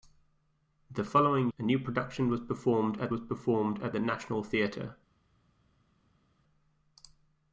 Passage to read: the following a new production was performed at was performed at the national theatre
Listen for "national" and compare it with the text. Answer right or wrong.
right